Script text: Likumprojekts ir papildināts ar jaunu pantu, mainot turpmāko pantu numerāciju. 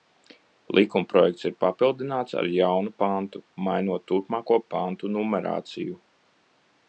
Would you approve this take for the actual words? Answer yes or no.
yes